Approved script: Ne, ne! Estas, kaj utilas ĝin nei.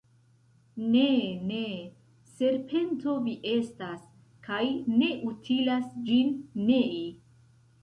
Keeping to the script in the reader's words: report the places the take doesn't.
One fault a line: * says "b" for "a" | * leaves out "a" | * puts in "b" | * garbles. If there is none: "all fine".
* puts in "Serpento vi"
* puts in "ne"